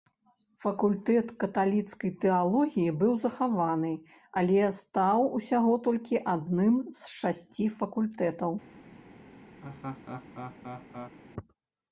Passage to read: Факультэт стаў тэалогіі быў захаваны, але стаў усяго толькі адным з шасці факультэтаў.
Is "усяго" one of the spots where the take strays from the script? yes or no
no